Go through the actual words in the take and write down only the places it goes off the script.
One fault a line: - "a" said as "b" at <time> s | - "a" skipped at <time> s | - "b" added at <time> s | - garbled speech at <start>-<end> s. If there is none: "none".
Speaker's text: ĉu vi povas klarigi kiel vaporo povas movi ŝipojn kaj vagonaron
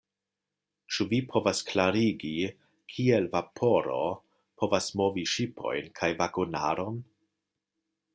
none